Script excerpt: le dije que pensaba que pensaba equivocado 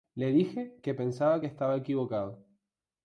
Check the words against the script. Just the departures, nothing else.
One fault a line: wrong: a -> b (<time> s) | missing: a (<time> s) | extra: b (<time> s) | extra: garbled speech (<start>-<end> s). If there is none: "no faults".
wrong: pensaba -> estaba (1.5 s)